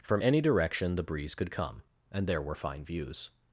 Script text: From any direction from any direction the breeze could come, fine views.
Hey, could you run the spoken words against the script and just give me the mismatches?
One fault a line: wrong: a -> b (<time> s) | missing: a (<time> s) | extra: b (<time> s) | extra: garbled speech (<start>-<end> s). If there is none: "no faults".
missing: from any direction (0.9 s)
extra: and there were (2.1 s)